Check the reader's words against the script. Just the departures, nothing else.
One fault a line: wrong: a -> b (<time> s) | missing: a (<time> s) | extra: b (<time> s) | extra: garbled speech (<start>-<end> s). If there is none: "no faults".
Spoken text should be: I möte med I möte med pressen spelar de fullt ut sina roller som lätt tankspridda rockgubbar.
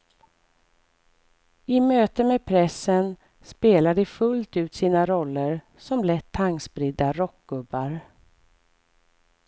missing: I möte med (2.5 s)